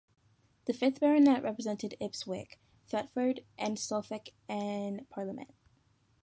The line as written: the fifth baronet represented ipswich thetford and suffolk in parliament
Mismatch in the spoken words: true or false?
false